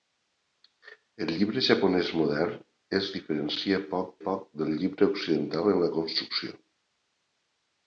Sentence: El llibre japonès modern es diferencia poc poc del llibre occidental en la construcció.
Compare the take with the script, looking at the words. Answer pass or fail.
pass